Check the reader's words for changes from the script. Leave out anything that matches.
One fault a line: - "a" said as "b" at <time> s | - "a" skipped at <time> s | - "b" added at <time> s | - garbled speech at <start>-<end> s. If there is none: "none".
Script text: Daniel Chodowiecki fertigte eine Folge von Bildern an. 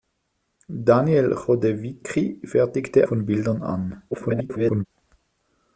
- "eine Folge" skipped at 3.1 s
- garbled speech at 4.1-4.9 s